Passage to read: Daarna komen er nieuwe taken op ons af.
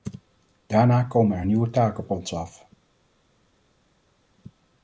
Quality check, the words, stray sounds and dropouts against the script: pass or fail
pass